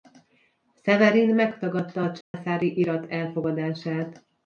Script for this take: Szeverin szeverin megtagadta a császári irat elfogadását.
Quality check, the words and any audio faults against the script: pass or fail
fail